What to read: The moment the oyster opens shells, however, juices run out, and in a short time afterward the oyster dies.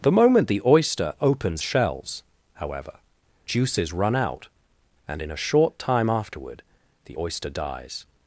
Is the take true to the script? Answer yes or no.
yes